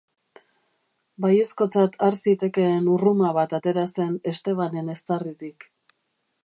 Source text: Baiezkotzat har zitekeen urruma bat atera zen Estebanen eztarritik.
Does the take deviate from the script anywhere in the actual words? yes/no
no